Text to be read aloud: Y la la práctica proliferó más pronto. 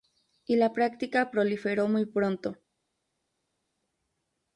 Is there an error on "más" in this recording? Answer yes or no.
yes